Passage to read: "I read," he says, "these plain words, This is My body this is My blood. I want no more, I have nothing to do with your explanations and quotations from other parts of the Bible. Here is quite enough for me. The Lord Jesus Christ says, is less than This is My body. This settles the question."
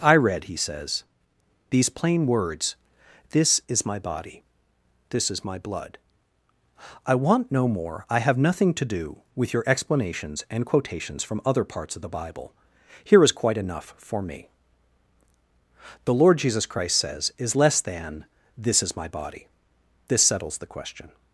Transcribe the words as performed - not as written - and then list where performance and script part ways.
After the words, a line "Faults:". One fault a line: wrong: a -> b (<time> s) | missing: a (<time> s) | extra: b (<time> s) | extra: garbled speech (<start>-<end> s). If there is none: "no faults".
"I read," he says, "these plain words, This is My body this is My blood. I want no more, I have nothing to do with your explanations and quotations from other parts of the Bible. Here is quite enough for me. The Lord Jesus Christ says, is less than This is My body. This settles the question."
Faults:
no faults